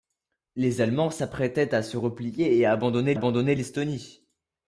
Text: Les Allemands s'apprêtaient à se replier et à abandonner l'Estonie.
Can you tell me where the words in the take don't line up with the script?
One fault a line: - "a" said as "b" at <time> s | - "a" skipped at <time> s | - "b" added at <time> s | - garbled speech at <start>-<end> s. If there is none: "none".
- "abandonner" added at 3.1 s